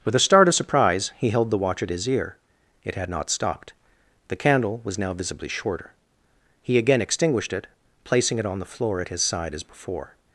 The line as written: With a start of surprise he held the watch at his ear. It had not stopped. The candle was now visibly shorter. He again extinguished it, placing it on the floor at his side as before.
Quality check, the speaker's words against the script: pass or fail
pass